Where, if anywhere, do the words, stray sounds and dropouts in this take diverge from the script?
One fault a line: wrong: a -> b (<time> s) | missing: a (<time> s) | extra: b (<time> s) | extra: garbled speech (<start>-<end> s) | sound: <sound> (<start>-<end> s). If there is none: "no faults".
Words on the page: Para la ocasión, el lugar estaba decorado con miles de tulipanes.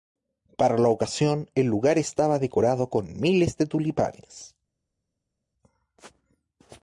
no faults